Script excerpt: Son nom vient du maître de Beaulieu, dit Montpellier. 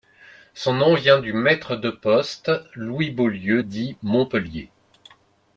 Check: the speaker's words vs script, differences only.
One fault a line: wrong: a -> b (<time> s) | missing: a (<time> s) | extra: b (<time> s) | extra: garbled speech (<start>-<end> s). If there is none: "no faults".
extra: poste Louis (1.9 s)